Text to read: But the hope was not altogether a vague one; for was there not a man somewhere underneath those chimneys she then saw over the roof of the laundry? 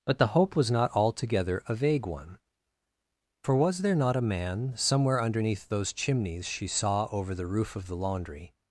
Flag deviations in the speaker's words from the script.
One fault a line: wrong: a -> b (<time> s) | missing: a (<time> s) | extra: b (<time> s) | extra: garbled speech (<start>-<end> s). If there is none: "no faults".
missing: then (6.7 s)